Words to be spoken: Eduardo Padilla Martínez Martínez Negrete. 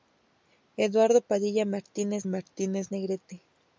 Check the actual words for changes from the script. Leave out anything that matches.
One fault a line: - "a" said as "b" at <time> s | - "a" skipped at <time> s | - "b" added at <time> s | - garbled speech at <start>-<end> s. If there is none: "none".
none